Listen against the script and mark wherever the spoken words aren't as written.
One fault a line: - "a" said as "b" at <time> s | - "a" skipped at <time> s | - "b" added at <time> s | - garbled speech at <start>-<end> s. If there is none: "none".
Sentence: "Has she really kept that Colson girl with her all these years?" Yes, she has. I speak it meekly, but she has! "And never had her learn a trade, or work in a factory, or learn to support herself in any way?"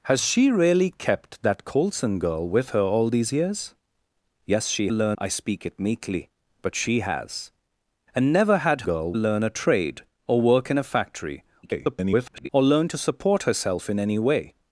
- "has" said as "learn" at 4.9 s
- "her" said as "girl" at 8.8 s
- garbled speech at 11.6-12.5 s